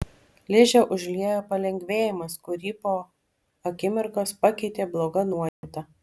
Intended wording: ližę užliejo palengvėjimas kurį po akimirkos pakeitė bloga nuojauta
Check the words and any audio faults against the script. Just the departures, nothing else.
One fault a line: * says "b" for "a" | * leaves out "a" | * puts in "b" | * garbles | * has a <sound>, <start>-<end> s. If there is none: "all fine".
* has a dropout, 5.5-5.6 s